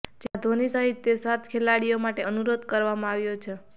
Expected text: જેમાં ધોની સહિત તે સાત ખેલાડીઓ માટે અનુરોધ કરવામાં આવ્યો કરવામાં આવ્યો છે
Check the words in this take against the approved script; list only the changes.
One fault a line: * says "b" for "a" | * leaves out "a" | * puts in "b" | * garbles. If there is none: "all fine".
* leaves out "કરવામાં આવ્યો"